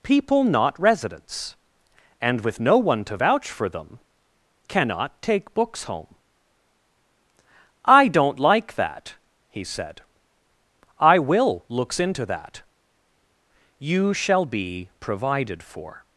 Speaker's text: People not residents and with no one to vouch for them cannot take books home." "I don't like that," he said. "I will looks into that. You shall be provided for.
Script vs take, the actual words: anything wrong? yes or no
no